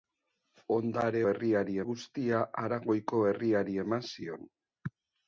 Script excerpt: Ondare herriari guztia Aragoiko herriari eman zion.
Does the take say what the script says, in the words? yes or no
yes